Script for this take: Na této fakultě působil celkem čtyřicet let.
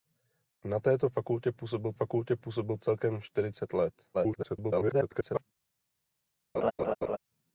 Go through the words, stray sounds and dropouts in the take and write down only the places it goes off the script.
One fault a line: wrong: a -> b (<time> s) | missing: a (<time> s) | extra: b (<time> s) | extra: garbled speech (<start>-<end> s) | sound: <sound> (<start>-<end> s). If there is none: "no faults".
extra: fakultě působil (1.9 s)
extra: garbled speech (4.1-5.4 s)
sound: laugh (6.5-7.2 s)